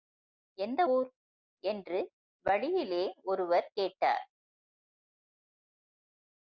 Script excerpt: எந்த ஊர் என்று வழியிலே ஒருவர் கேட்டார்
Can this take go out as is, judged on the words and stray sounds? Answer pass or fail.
pass